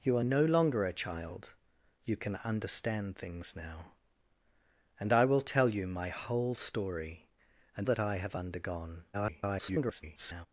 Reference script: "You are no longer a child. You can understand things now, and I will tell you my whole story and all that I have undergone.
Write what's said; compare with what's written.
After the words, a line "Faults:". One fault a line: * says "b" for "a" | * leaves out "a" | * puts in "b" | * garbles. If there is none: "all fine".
"You are no longer a child. You can understand things now, and I will tell you my whole story and that I have undergone. [garbled]
Faults:
* leaves out "all"
* garbles